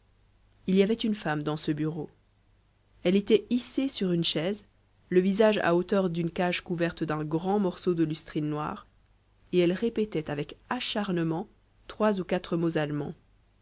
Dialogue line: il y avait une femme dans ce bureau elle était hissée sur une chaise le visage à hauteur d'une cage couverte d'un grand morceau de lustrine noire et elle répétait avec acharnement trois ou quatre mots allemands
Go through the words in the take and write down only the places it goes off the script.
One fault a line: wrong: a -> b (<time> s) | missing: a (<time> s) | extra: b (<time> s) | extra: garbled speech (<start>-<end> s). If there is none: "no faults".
no faults